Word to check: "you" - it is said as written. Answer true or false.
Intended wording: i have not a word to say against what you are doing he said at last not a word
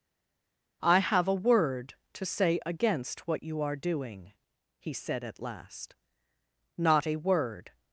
true